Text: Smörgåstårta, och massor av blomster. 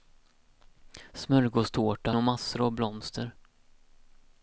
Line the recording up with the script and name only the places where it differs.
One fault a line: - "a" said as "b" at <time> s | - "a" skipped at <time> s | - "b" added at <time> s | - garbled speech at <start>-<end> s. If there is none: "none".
none